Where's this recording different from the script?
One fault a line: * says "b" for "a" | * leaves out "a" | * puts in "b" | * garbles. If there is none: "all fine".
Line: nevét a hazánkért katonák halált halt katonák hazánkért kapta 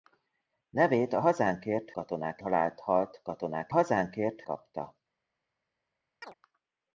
all fine